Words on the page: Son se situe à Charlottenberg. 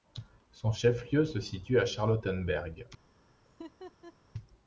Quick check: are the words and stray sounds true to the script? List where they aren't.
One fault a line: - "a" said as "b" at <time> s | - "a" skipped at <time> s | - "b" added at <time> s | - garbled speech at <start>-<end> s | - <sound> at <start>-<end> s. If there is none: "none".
- "chef lieu" added at 0.7 s
- laugh at 3.4-4.2 s